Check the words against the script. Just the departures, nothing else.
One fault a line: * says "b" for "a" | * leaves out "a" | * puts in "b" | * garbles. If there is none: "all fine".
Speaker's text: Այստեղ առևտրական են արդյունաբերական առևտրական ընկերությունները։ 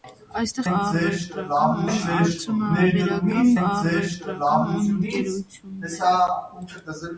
all fine